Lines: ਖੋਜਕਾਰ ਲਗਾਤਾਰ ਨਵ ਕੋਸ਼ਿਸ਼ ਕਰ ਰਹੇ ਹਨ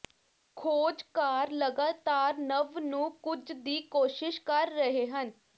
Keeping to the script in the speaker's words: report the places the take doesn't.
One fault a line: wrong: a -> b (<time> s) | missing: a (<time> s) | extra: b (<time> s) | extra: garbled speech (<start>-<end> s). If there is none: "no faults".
extra: ਨੂੰ ਕੁਝ ਦੀ (2.8 s)